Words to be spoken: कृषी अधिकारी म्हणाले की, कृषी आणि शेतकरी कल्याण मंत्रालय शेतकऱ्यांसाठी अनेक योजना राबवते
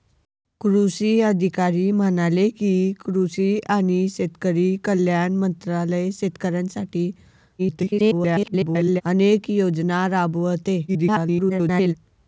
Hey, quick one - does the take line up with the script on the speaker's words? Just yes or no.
no